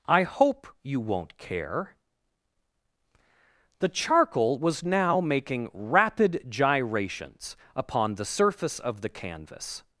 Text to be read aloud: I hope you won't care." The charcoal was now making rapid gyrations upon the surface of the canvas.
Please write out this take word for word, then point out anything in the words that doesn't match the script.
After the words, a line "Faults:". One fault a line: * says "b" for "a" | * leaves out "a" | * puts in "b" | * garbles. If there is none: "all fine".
I hope you won't care." The charcoal was now making rapid gyrations upon the surface of the canvas.
Faults:
all fine